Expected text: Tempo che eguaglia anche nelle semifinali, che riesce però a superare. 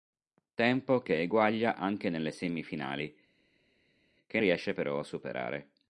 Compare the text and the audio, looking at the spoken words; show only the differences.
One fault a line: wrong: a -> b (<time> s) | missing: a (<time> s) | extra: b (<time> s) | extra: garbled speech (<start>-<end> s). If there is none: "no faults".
no faults